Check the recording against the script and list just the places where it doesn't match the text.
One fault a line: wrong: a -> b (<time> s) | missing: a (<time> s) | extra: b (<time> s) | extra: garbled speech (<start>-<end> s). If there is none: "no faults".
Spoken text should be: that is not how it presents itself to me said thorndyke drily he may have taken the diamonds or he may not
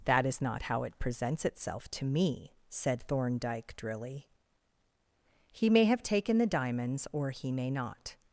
no faults